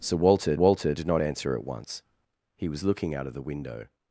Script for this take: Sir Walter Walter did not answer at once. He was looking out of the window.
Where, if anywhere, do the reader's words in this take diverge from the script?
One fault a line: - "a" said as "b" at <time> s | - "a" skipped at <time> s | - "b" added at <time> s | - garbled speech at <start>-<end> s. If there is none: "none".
none